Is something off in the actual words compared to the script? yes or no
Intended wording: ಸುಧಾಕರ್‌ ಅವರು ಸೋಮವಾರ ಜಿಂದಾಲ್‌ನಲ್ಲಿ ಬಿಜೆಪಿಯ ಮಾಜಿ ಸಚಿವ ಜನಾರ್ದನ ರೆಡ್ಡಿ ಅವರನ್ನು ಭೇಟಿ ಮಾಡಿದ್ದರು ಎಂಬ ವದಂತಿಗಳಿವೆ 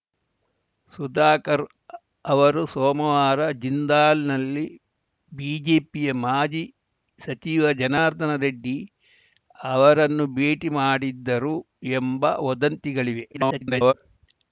yes